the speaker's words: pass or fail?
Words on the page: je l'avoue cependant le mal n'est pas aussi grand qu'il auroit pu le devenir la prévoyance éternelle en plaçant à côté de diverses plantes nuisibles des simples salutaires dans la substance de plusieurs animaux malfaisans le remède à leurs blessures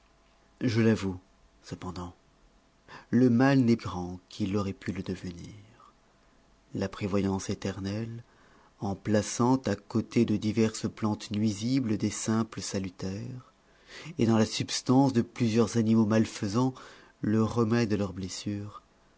fail